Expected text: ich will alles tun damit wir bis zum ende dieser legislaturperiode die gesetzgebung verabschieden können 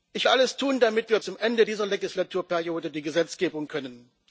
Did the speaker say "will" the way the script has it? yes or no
no